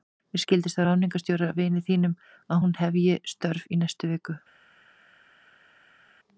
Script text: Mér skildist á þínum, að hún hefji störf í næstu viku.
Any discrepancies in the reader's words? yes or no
yes